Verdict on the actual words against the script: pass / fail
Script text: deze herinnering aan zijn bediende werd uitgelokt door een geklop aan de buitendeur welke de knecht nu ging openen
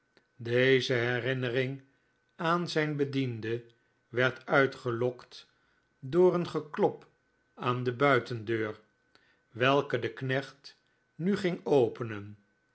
pass